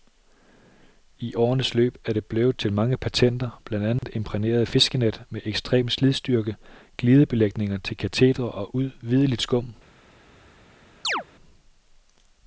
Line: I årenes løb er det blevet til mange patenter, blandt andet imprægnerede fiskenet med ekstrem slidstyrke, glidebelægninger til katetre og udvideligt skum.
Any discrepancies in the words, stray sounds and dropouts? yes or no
yes